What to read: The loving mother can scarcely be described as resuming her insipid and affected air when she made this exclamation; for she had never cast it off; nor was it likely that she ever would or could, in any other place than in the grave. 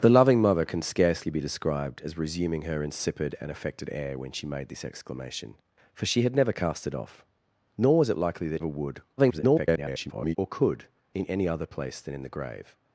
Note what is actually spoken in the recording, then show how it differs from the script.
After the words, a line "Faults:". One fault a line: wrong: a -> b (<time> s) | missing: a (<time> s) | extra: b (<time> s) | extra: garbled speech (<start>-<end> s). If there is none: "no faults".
The loving mother can scarcely be described as resuming her insipid and affected air when she made this exclamation; for she had never cast it off; nor was it likely that ever would [garbled] or could, in any other place than in the grave.
Faults:
missing: she (8.6 s)
extra: garbled speech (9.2-10.4 s)